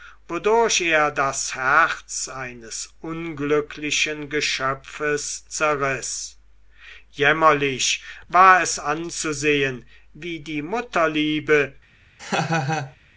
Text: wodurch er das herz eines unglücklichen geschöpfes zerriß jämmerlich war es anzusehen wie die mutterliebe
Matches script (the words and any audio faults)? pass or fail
fail